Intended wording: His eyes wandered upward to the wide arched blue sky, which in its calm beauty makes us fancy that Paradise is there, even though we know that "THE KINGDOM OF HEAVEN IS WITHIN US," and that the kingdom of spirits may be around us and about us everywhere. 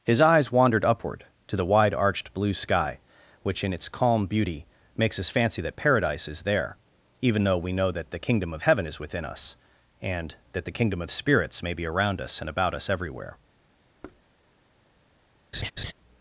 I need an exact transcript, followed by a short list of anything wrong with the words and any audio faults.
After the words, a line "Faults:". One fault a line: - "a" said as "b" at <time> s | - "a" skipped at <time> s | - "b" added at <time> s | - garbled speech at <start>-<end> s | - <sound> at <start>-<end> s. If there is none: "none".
His eyes wandered upward to the wide arched blue sky, which in its calm beauty makes us fancy that Paradise is there, even though we know that "THE KINGDOM OF HEAVEN IS WITHIN US," and that the kingdom of spirits may be around us and about us everywhere.
Faults:
- thud at 14.0-14.2 s
- laugh at 15.5-15.9 s